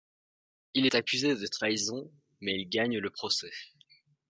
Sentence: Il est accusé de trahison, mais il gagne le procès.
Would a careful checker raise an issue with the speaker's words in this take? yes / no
no